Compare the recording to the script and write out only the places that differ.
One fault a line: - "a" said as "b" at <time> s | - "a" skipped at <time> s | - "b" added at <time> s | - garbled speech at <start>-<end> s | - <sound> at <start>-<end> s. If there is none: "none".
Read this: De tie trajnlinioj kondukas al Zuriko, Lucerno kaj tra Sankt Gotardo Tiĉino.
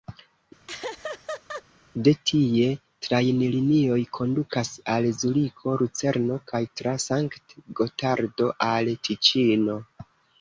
- laugh at 0.7-1.6 s
- "al" added at 8.7 s